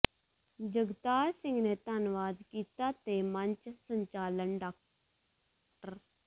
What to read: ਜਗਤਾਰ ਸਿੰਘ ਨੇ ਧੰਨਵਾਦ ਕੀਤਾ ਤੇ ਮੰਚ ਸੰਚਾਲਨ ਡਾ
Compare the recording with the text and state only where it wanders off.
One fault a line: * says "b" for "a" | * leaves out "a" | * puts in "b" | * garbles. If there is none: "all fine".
all fine